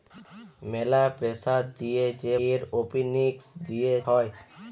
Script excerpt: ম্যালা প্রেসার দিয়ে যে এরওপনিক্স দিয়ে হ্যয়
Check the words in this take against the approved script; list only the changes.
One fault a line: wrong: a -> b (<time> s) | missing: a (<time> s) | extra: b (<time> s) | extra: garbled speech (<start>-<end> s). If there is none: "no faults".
no faults